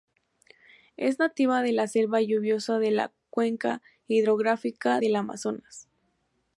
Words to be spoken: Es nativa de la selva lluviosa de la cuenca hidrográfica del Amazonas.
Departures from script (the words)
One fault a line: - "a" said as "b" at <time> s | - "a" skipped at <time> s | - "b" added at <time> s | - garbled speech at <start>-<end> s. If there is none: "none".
none